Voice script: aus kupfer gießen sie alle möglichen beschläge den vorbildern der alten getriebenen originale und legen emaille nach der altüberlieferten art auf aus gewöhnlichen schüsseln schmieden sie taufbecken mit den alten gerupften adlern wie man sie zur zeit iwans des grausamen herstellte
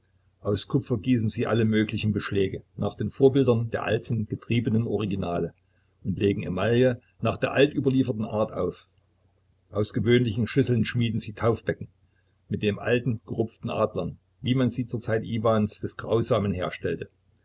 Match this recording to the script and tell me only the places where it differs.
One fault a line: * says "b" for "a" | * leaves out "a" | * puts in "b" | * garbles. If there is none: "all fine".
* puts in "nach"